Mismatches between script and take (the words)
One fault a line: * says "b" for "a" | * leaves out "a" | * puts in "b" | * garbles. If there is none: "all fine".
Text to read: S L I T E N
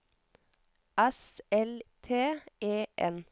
* leaves out "I"